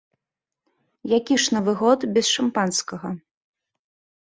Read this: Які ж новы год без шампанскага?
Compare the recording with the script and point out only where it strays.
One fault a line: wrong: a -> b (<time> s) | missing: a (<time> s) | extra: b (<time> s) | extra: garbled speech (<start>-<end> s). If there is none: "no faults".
no faults